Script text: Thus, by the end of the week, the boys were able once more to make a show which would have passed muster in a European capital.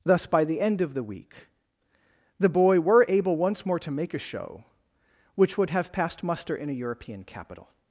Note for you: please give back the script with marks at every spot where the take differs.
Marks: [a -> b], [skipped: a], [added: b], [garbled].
Thus, by the end of the week, the [boys -> boy] were able once more to make a show which would have passed muster in a European capital.